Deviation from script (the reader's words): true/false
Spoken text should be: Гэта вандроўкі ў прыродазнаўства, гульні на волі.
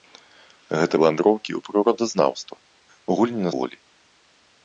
false